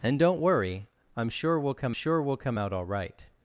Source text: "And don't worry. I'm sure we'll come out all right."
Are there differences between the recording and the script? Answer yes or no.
yes